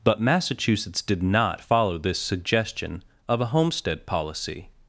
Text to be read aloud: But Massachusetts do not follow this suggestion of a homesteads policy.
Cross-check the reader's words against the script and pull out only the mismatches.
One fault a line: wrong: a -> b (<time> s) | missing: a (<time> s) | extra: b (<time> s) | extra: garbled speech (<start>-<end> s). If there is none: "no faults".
wrong: do -> did (1.0 s)
wrong: homesteads -> homestead (3.5 s)